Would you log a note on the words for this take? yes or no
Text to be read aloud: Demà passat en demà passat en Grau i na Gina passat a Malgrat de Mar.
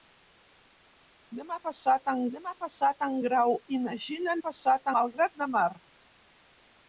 no